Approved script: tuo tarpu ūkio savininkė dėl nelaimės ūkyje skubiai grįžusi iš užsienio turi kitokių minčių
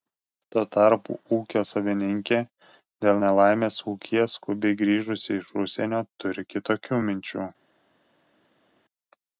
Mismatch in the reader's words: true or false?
false